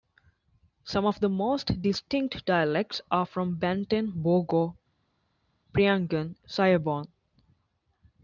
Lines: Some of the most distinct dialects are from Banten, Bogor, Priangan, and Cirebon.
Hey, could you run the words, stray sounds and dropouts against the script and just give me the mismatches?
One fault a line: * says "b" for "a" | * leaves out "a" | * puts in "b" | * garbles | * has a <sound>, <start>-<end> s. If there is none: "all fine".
* leaves out "and"